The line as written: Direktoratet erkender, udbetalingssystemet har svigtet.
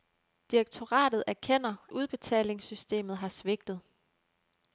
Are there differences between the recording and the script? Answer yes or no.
no